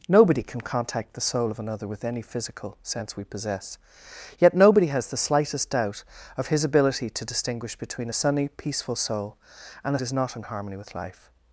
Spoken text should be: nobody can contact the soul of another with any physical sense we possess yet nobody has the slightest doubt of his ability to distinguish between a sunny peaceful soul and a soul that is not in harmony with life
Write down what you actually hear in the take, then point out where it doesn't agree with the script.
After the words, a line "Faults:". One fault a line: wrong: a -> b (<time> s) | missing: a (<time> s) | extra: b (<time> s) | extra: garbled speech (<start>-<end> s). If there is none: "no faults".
nobody can contact the soul of another with any physical sense we possess yet nobody has the slightest doubt of his ability to distinguish between a sunny peaceful soul and a is not in harmony with life
Faults:
missing: soul that (10.0 s)